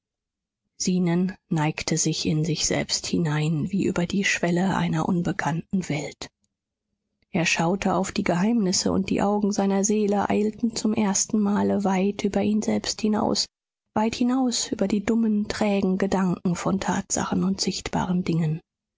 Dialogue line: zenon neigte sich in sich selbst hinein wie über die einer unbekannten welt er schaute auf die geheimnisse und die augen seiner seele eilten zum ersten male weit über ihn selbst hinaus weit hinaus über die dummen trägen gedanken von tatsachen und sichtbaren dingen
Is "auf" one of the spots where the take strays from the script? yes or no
no